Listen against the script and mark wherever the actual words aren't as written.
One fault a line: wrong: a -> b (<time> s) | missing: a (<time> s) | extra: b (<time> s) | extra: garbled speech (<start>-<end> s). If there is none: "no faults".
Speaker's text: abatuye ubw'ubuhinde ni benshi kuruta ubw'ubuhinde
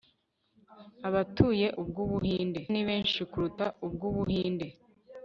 no faults